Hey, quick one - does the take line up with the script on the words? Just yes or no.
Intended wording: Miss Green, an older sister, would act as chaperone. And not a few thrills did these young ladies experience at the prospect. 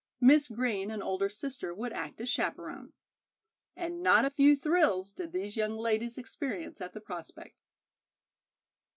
yes